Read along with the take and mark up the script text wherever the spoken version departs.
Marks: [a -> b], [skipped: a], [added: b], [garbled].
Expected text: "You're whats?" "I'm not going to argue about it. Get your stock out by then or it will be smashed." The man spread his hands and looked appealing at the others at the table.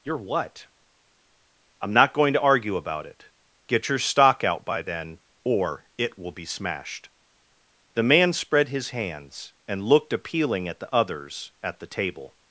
"You're [whats?" -> what] "I'm not going to argue about it. Get your stock out by then or it will be smashed." The man spread his hands and looked appealing at the others at the table.